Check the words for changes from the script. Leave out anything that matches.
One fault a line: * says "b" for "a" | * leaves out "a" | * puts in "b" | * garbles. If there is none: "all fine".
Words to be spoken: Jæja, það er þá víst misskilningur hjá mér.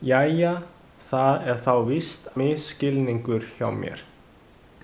all fine